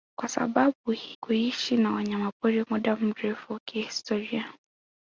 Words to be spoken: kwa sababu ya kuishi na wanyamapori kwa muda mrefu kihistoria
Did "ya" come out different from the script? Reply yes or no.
yes